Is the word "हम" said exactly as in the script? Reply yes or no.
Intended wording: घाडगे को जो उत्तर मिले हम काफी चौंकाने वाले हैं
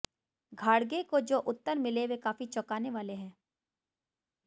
no